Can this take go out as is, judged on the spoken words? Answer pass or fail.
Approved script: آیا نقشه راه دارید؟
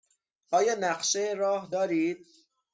pass